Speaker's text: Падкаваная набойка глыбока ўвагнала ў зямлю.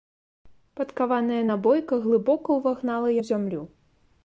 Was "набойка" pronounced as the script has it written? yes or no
yes